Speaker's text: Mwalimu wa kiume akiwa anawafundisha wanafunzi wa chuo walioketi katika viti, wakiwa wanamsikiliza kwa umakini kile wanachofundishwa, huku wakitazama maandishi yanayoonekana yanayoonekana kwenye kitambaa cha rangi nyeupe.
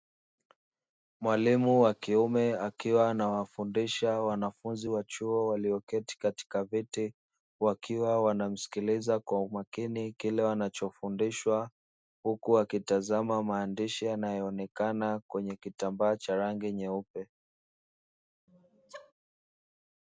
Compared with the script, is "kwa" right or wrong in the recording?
right